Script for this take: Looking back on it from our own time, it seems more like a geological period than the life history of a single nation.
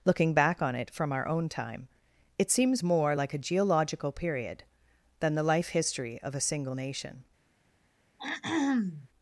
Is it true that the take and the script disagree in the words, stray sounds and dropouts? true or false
true